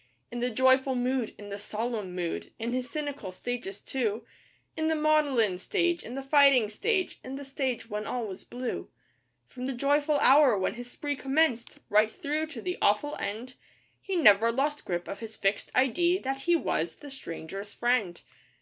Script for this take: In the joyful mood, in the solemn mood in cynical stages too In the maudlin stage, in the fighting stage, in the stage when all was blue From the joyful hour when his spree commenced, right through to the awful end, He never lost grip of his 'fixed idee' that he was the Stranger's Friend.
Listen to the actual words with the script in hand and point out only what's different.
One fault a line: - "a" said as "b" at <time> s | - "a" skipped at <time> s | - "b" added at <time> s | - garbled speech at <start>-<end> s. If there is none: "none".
- "his" added at 2.7 s